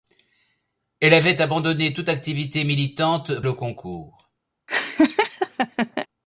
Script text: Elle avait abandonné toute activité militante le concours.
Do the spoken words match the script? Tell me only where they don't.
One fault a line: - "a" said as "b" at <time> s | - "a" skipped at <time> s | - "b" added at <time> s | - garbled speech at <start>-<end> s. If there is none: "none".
none